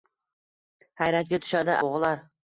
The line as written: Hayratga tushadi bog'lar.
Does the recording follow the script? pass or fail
pass